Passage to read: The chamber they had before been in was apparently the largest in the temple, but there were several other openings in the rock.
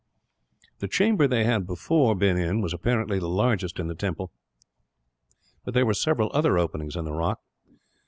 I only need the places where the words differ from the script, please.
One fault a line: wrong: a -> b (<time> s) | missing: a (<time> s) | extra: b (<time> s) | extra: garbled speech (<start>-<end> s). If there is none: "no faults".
no faults